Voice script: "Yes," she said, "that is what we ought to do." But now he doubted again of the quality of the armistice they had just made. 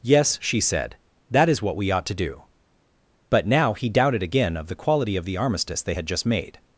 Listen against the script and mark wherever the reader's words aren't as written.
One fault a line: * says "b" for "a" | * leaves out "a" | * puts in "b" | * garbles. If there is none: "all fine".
all fine